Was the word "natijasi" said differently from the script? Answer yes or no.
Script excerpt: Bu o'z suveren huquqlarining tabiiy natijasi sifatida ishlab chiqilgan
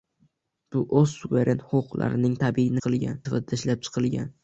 yes